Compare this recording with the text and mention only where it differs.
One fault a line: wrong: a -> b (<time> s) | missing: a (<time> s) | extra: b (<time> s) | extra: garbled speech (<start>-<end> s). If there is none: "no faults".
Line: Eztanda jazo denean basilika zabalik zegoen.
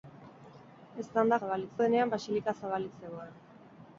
wrong: jazo -> zabalik (1.4 s)